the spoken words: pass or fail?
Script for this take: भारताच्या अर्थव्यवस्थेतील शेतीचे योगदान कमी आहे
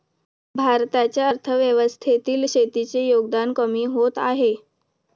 fail